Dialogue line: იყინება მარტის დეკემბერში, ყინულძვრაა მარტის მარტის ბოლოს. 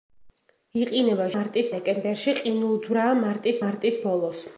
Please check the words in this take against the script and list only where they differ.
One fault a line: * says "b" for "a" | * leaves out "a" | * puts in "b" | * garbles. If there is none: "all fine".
all fine